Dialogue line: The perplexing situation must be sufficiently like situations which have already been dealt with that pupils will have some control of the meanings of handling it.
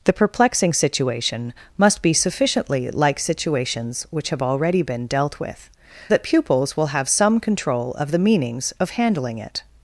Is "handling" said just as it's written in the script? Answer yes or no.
yes